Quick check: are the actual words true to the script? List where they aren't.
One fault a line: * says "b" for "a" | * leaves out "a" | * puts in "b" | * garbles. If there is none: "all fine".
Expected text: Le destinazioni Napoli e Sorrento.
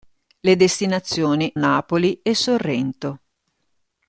all fine